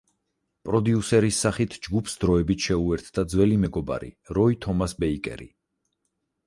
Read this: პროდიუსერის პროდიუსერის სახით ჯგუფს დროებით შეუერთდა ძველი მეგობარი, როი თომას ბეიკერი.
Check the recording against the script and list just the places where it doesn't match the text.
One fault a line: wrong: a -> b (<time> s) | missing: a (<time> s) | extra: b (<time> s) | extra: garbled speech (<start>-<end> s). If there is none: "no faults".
missing: პროდიუსერის (1.4 s)